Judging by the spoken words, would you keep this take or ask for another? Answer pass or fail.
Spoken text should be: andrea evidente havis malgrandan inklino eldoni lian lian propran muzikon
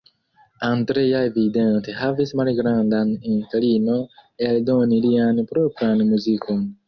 fail